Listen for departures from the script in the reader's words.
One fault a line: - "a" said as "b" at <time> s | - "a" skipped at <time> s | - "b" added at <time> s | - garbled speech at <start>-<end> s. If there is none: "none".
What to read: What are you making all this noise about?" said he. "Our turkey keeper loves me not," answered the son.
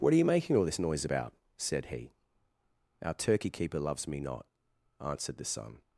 none